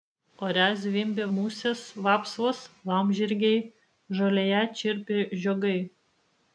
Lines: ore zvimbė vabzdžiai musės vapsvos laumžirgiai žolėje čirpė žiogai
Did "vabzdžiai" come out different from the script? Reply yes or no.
yes